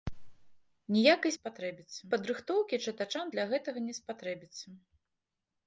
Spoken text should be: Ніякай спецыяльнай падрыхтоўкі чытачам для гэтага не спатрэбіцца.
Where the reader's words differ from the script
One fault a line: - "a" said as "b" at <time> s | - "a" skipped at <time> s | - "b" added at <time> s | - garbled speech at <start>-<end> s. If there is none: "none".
- "спецыяльнай" said as "спатрэбіцца" at 1.4 s